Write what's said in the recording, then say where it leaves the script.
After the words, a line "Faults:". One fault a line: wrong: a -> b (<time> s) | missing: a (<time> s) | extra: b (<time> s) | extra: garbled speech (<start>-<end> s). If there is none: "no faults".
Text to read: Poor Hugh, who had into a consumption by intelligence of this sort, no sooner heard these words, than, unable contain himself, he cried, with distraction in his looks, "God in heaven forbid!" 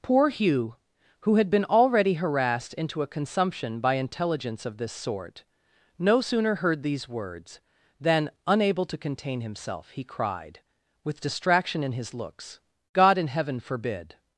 Poor Hugh, who had been already harassed into a consumption by intelligence of this sort, no sooner heard these words, than, unable to contain himself, he cried, with distraction in his looks, "God in heaven forbid!"
Faults:
extra: been already harassed (1.5 s)
extra: to (8.8 s)